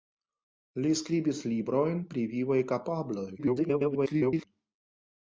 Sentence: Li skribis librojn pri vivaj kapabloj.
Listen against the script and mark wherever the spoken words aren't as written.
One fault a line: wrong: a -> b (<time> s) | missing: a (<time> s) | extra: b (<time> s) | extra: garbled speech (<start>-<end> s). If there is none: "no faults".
extra: garbled speech (3.4-4.4 s)